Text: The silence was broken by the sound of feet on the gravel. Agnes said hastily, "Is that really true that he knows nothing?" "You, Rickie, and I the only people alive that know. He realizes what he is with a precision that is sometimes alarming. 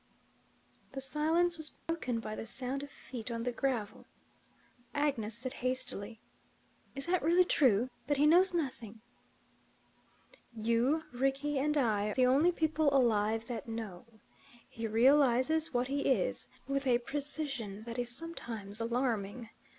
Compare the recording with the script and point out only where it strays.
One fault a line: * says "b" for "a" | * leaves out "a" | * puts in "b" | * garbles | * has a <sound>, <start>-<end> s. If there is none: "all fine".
* has a dropout, 1.8-1.9 s